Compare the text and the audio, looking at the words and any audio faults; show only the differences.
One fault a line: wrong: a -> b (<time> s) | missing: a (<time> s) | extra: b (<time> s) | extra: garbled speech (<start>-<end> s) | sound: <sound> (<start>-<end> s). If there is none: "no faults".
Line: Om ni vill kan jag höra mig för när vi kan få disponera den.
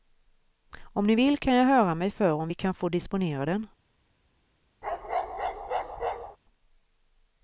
wrong: när -> om (2.3 s)
sound: bark (4.8-6.4 s)